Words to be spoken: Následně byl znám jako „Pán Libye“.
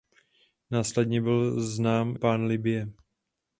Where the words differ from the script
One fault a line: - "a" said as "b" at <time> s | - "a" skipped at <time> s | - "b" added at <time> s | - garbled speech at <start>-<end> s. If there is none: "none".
- "jako" skipped at 2.1 s